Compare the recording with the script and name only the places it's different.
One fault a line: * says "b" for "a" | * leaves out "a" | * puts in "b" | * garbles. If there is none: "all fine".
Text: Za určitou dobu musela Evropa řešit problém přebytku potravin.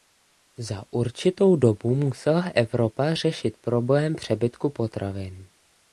all fine